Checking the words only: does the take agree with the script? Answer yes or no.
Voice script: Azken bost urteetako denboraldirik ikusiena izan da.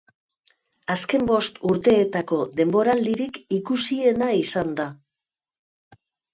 yes